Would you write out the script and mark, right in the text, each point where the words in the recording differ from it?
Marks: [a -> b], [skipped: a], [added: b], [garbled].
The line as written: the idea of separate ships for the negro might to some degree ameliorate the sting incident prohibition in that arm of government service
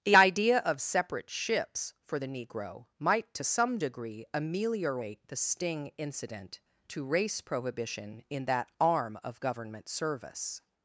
the idea of separate ships for the negro might to some degree ameliorate the sting incident [added: to race] prohibition in that arm of government service